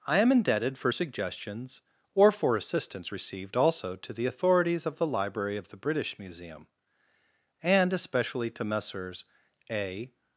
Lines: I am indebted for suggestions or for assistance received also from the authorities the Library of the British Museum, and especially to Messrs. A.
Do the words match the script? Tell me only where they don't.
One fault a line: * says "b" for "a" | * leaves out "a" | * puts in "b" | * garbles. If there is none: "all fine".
* says "to" for "from"
* puts in "of"